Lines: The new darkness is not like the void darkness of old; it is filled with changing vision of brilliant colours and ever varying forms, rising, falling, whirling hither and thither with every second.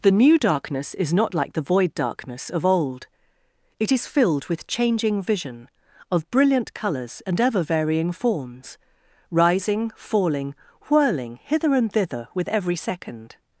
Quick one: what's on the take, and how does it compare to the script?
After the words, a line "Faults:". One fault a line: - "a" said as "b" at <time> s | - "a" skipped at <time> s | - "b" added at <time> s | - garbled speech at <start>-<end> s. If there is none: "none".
The new darkness is not like the void darkness of old; it is filled with changing vision of brilliant colours and ever varying forms, rising, falling, whirling hither and thither with every second.
Faults:
none